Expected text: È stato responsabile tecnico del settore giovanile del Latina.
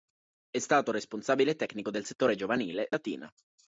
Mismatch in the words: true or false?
true